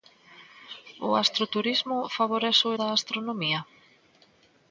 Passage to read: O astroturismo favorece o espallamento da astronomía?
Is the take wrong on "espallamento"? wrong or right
wrong